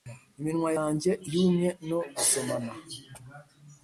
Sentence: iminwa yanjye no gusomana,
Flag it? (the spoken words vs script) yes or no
yes